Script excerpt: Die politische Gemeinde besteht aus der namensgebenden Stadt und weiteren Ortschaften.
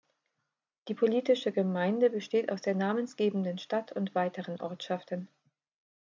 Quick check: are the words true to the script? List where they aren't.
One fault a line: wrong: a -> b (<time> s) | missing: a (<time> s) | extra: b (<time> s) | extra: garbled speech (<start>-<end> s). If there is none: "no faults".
no faults